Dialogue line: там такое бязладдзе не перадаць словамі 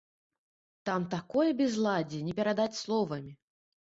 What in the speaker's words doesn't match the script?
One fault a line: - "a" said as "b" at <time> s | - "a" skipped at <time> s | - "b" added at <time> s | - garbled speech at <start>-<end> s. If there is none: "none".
none